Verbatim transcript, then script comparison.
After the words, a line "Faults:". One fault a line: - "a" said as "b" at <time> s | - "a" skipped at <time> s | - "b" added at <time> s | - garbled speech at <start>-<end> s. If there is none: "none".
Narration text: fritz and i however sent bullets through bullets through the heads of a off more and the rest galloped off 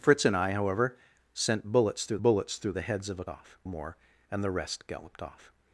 fritz and i however sent bullets through bullets through the heads of a off more and the rest galloped off
Faults:
none